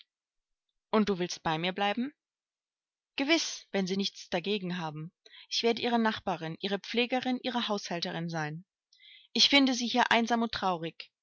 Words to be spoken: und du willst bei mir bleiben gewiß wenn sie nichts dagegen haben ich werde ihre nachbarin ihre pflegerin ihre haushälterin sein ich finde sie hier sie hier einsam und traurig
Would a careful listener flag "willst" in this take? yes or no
no